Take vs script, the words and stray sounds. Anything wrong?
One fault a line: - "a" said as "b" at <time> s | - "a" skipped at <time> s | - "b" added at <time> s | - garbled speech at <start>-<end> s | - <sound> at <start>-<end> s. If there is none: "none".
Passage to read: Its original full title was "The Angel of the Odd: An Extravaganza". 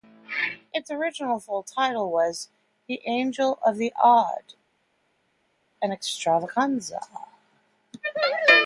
none